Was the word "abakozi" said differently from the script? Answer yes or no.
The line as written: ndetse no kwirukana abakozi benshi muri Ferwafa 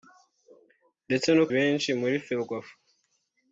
yes